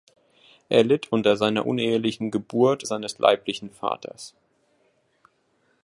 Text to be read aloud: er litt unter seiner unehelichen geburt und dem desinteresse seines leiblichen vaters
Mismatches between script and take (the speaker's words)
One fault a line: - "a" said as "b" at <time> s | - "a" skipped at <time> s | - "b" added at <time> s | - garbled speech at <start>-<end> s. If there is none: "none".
- "und dem desinteresse" skipped at 2.8 s